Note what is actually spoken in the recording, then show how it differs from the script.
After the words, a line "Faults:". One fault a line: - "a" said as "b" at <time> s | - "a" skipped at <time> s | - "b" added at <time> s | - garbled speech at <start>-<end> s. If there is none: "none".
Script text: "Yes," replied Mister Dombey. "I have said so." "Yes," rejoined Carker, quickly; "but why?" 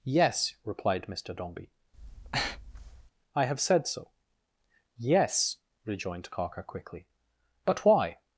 "Yes," replied Mister Dombey. "I have said so." "Yes," rejoined Carker, quickly; "but why?"
Faults:
none